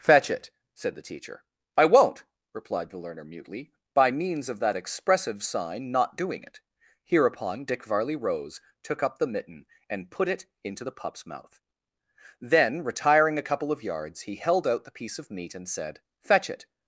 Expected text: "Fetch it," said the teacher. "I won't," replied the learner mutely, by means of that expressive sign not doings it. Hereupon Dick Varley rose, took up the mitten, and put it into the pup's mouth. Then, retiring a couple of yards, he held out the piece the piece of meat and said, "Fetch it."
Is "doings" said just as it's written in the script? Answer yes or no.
no